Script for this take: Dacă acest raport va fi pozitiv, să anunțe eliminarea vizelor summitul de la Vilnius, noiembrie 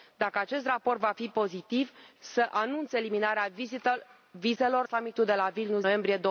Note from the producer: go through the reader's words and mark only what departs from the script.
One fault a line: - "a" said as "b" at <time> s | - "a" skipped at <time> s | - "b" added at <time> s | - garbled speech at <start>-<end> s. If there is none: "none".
none